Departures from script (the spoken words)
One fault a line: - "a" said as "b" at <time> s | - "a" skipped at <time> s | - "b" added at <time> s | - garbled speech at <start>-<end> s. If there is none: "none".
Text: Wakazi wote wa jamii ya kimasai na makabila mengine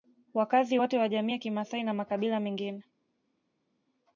none